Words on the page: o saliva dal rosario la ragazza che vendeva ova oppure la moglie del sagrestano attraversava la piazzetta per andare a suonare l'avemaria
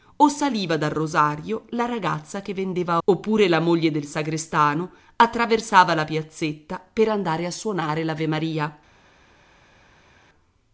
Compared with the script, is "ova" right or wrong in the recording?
wrong